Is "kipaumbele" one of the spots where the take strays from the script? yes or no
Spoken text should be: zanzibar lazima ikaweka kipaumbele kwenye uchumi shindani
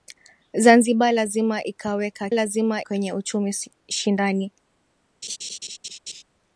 yes